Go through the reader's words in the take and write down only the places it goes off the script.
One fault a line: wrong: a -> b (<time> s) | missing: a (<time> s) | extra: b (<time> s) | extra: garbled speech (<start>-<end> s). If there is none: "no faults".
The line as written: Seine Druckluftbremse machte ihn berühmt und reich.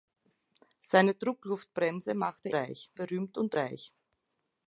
wrong: ihn -> reich (2.5 s)